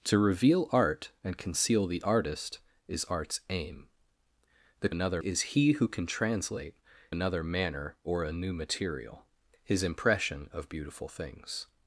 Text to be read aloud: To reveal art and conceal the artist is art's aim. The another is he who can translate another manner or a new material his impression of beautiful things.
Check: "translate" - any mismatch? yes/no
no